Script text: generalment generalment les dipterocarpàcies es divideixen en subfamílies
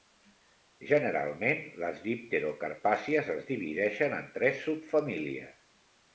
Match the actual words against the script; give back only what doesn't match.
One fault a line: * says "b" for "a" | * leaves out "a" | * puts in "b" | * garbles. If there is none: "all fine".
* leaves out "generalment"
* puts in "tres"